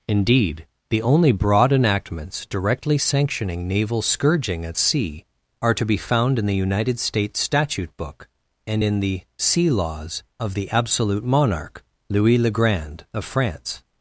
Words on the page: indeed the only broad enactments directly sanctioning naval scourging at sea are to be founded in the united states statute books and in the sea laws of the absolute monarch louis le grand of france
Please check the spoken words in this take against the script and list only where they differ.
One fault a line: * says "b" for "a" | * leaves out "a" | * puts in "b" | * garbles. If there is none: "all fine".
* says "found" for "founded"
* says "book" for "books"